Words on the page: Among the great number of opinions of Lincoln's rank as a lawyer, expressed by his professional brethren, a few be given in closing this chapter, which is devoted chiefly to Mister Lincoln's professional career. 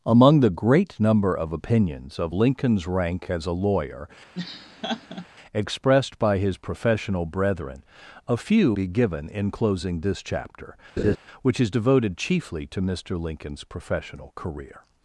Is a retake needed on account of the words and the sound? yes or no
yes